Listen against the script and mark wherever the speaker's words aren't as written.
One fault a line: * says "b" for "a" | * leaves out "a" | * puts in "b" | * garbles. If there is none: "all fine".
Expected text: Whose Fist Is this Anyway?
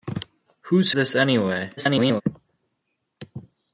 * leaves out "Fist Is"
* garbles